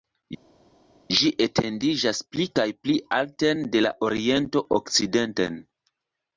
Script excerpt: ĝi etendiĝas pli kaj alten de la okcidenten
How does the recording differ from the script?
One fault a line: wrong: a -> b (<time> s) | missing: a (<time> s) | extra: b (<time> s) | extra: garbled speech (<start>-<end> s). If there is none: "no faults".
extra: pli (2.9 s)
extra: oriento (4.1 s)